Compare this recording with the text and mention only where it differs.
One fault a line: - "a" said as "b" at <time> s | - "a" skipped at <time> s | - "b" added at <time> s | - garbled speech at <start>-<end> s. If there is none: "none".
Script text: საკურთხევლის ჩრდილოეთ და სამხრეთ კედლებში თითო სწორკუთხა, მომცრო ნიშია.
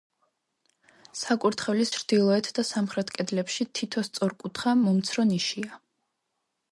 none